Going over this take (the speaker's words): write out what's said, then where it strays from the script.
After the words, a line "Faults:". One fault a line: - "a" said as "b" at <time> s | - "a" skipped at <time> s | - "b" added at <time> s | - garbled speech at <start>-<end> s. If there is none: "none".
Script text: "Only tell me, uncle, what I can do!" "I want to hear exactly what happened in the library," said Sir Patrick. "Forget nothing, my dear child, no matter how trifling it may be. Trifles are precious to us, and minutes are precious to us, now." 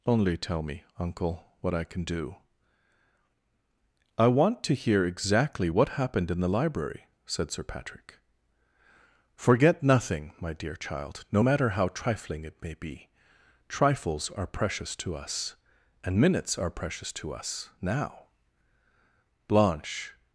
"Only tell me, uncle, what I can do!" "I want to hear exactly what happened in the library," said Sir Patrick. "Forget nothing, my dear child, no matter how trifling it may be. Trifles are precious to us, and minutes are precious to us, now." Blanche
Faults:
- "Blanche" added at 19.5 s